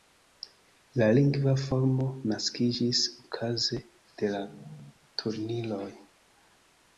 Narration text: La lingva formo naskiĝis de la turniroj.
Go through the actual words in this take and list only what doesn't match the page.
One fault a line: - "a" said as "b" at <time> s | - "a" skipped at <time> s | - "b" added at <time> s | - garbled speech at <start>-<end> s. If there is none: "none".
- "okaze" added at 3.2 s